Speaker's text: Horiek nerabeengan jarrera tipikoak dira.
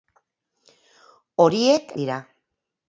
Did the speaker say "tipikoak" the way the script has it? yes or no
no